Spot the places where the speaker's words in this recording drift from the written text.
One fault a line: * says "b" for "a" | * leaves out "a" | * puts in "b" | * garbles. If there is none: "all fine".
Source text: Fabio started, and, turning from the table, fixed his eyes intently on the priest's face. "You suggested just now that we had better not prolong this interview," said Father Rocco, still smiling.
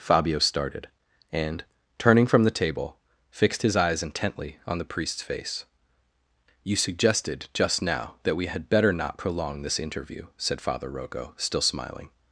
all fine